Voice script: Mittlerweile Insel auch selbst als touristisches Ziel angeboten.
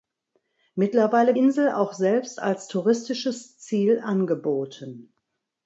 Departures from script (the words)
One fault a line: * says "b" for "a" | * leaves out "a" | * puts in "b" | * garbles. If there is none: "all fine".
all fine